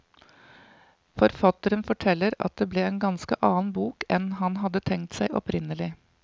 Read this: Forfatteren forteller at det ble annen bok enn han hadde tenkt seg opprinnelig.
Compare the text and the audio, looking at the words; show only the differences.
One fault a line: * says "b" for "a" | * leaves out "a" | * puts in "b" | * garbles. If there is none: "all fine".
* puts in "en ganske"